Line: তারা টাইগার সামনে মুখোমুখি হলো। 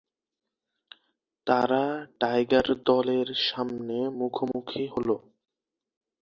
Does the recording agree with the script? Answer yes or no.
no